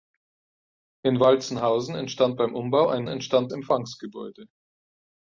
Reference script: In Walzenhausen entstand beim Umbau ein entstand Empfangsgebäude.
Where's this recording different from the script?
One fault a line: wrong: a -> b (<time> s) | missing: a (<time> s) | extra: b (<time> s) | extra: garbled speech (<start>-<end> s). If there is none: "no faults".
no faults